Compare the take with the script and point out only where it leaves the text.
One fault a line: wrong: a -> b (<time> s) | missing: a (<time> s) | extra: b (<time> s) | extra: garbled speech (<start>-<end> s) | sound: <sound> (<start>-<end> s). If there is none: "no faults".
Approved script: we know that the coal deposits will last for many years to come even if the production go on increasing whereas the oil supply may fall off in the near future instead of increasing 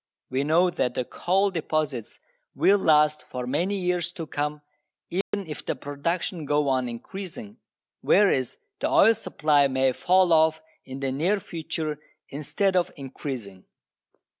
sound: dropout (5.2-5.3 s)